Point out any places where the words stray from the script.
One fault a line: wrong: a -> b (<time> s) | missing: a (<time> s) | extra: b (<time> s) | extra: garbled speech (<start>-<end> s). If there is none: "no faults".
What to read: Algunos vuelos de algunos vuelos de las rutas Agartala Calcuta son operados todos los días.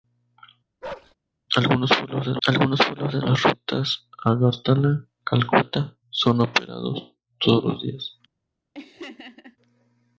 no faults